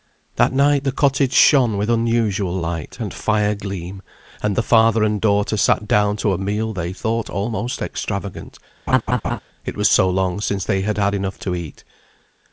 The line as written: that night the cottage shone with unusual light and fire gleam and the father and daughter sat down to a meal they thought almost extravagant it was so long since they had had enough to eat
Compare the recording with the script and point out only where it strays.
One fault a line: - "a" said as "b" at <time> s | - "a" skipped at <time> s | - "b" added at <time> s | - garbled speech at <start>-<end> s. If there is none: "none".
none